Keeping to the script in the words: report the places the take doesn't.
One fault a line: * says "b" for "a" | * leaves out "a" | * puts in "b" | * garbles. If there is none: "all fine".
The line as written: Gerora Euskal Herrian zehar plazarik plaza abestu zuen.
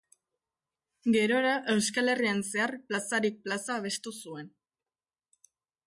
all fine